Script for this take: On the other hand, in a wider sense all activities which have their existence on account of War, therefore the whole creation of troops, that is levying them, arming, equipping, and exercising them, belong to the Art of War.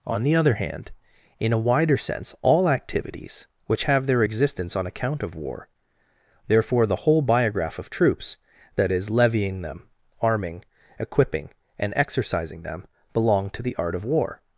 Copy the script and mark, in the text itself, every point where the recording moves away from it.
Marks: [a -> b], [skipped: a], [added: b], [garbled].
On the other hand, in a wider sense all activities which have their existence on account of War, therefore the whole [creation -> biograph] of troops, that is levying them, arming, equipping, and exercising them, belong to the Art of War.